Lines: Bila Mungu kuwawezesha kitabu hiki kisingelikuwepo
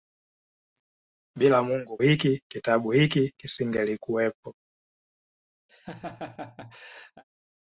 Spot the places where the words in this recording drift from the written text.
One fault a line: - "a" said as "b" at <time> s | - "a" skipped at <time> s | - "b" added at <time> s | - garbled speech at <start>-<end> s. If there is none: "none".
- "kuwawezesha" said as "hiki" at 2.0 s